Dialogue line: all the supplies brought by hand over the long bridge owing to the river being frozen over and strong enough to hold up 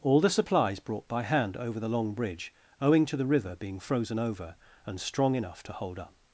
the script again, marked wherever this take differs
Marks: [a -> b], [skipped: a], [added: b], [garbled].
all the supplies brought by hand over the long bridge owing to the river being frozen over and strong enough to hold up